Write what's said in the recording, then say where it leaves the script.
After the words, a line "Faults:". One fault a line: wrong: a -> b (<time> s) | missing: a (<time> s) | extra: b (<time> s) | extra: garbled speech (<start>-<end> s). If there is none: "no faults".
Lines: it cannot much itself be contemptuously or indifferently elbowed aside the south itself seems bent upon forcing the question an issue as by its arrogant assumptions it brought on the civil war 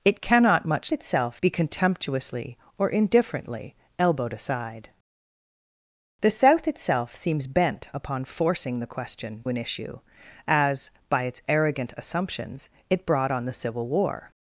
it cannot much itself be contemptuously or indifferently elbowed aside the south itself seems bent upon forcing the question an issue as by its arrogant assumptions it brought on the civil war
Faults:
no faults